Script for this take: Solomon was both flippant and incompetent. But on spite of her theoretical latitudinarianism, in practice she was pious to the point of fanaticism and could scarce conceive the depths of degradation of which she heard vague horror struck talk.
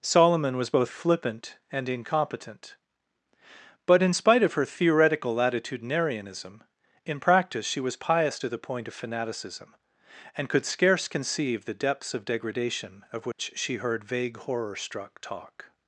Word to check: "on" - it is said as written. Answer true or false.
false